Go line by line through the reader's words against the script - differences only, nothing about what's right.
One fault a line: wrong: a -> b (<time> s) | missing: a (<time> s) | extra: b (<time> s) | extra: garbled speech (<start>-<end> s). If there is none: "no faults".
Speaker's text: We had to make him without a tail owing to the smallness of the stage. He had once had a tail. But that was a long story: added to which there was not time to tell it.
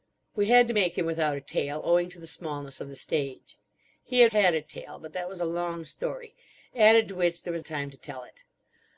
missing: once (4.3 s)
missing: not (7.6 s)